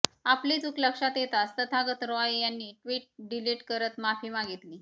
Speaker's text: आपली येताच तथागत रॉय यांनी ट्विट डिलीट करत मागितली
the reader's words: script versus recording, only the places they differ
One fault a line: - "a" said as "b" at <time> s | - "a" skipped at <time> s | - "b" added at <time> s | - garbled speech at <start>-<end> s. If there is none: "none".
- "चूक लक्षात" added at 0.6 s
- "माफी" added at 4.0 s